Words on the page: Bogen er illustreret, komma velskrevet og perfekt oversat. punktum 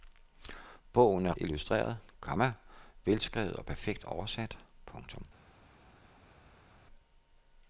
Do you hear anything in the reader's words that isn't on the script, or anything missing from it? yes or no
no